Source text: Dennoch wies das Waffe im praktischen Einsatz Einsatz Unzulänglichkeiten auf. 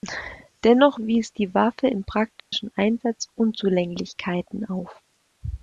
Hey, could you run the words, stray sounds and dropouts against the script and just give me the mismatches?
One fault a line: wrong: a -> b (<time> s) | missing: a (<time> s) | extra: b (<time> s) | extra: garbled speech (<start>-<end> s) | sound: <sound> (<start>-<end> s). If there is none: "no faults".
wrong: das -> die (1.3 s)
sound: dropout (2.4-2.5 s)
missing: Einsatz (3.3 s)